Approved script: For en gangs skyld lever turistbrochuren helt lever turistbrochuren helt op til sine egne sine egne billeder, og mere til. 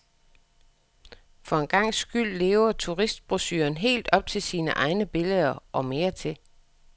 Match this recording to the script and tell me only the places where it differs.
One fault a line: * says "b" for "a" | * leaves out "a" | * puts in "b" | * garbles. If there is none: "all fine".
* leaves out "lever turistbrochuren helt"
* leaves out "sine egne"